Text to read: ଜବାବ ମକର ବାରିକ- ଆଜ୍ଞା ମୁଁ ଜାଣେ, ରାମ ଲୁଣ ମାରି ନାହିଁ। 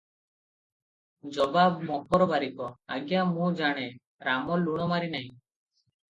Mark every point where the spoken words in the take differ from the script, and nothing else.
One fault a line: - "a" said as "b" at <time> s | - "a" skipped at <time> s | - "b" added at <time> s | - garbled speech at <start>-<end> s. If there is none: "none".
none